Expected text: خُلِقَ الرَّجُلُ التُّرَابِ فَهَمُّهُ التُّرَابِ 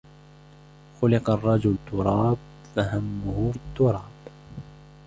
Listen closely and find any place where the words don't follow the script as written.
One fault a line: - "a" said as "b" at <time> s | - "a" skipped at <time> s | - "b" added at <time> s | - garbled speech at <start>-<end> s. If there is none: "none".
none